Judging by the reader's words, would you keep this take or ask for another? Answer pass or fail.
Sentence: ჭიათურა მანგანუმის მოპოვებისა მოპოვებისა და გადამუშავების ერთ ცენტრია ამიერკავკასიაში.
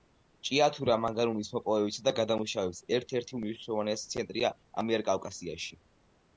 fail